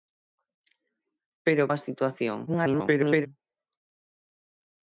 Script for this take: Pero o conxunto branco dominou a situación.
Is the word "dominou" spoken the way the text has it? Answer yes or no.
no